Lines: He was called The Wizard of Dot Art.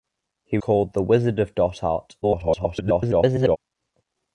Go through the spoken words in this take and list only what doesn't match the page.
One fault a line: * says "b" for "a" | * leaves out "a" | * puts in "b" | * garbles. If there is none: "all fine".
* leaves out "was"
* garbles